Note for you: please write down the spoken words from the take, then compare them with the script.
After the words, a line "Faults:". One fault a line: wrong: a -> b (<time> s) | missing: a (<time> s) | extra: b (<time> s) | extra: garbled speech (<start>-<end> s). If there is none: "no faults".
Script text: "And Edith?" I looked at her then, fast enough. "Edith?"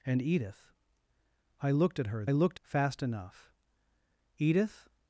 "And Edith?" I looked at her looked, fast enough. "Edith?"
Faults:
wrong: then -> looked (2.3 s)